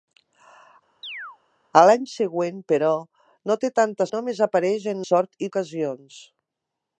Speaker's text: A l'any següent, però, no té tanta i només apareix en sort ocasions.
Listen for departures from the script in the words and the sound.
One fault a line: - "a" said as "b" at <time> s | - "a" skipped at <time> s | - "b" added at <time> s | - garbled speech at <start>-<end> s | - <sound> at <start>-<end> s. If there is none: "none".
- chirp at 1.0-1.4 s